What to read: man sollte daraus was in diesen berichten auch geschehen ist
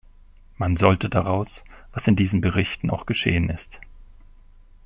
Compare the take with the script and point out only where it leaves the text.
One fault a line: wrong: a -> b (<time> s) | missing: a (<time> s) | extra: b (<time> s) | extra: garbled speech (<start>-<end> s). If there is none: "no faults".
no faults